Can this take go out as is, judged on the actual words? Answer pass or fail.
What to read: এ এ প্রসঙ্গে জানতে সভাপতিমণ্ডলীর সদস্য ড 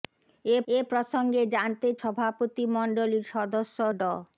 pass